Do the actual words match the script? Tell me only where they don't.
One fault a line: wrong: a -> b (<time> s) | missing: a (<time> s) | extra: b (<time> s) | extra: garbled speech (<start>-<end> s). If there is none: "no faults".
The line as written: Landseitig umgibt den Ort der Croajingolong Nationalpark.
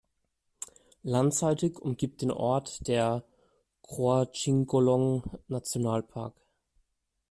no faults